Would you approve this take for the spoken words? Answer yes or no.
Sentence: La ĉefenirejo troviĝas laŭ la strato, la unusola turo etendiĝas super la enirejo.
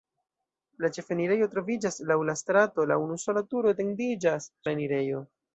no